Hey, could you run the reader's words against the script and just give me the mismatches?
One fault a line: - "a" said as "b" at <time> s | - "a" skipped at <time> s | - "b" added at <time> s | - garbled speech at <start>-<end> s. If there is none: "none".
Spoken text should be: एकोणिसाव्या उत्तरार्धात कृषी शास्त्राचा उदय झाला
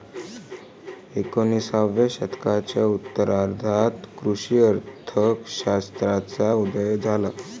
- "शतकाच्या" added at 2.1 s
- "अर्थ" added at 4.6 s